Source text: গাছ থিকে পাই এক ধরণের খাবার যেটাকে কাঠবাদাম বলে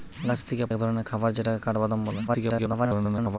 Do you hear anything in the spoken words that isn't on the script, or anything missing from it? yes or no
yes